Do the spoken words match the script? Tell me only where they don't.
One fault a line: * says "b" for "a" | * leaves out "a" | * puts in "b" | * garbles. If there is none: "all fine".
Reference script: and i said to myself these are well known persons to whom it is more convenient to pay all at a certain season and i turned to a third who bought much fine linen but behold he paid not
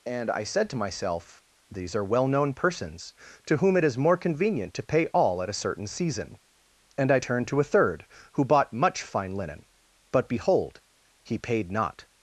all fine